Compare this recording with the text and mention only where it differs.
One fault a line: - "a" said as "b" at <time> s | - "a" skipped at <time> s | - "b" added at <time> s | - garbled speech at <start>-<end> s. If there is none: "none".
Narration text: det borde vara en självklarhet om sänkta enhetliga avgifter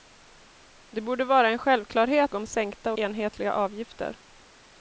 none